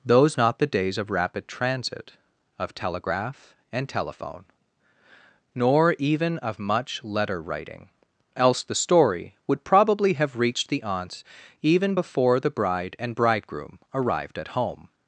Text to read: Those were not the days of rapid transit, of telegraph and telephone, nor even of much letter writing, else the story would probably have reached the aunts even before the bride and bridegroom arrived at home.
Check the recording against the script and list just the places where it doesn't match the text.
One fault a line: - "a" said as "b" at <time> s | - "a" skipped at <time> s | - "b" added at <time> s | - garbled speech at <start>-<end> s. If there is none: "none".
- "were" skipped at 0.4 s